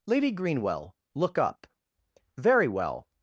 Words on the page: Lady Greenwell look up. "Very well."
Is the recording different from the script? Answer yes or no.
no